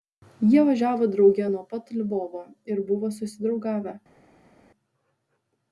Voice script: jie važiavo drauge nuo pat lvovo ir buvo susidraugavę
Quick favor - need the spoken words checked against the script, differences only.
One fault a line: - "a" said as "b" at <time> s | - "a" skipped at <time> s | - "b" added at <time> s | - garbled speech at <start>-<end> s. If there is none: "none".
none